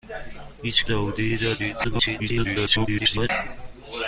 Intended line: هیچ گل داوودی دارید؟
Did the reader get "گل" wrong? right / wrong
wrong